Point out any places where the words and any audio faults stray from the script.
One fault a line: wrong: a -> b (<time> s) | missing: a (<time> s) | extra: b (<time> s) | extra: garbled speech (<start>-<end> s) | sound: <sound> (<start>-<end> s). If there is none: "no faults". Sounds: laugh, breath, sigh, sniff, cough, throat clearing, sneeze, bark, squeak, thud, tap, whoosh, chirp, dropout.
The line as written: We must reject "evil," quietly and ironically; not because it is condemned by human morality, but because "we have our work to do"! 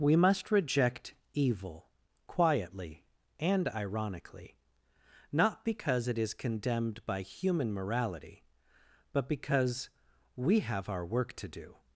no faults